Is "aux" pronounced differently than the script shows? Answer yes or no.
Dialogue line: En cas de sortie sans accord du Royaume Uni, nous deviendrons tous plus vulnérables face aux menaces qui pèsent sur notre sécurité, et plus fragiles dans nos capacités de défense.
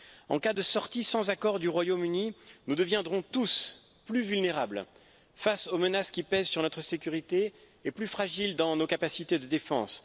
no